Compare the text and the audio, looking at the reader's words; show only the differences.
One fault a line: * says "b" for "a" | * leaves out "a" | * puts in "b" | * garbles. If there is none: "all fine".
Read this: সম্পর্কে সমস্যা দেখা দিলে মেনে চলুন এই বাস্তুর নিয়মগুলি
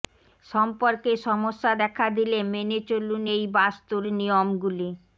all fine